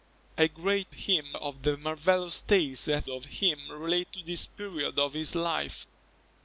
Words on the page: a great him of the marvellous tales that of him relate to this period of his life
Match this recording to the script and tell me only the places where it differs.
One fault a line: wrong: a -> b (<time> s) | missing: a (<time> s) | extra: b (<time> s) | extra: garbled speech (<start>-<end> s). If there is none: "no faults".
no faults